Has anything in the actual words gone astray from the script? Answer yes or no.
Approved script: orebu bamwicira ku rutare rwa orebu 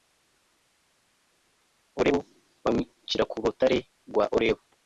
no